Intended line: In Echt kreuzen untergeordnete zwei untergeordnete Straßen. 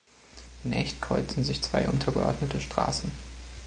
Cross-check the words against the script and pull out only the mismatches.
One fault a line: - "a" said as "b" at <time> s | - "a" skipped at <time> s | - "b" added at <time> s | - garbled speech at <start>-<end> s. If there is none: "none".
- "untergeordnete" said as "sich" at 1.4 s